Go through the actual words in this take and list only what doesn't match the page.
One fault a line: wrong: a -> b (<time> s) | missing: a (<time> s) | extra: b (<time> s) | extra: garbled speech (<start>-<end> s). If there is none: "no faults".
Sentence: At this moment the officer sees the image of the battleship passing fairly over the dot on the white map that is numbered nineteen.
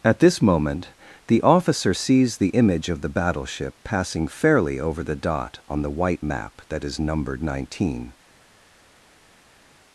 no faults